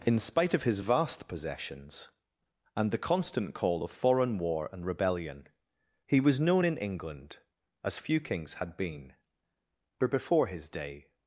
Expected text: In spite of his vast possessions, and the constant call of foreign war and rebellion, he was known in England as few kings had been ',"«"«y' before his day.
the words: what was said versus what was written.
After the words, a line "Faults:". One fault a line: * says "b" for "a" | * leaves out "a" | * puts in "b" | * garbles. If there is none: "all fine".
In spite of his vast possessions, and the constant call of foreign war and rebellion, he was known in England as few kings had been ',"«"«but' before his day.
Faults:
* says "but" for "y"